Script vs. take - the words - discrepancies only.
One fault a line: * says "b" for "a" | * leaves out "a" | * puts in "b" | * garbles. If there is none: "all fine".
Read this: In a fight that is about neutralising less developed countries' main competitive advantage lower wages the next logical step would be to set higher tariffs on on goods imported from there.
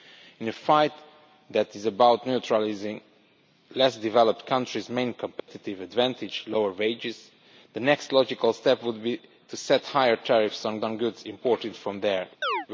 all fine